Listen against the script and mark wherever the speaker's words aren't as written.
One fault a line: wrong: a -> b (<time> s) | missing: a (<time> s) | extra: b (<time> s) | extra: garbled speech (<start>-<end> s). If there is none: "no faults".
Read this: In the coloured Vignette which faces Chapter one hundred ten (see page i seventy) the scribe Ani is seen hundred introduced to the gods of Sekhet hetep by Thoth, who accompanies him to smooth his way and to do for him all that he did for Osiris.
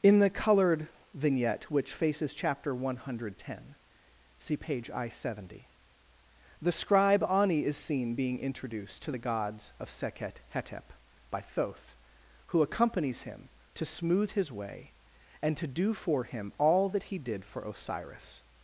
wrong: hundred -> being (8.1 s)